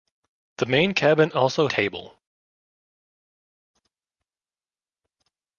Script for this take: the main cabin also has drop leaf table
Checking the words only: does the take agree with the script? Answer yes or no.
no